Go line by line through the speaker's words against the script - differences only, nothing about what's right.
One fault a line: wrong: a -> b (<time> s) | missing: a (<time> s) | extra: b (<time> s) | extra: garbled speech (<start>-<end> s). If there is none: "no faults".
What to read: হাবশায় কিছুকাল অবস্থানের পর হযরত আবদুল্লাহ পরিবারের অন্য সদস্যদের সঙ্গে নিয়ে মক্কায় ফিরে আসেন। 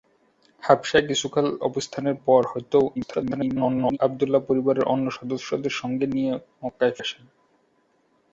extra: garbled speech (2.9-4.0 s)
missing: ফিরে (7.0 s)